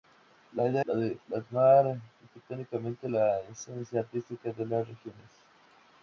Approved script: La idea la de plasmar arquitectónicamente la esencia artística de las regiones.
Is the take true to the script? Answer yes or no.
yes